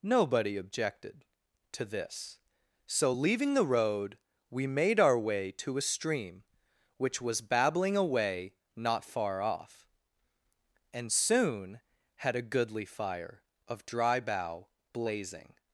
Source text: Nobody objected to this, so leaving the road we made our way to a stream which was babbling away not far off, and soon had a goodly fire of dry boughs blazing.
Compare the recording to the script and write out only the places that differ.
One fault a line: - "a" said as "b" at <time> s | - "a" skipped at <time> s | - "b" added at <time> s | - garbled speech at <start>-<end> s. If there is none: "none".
- "boughs" said as "bough" at 14.2 s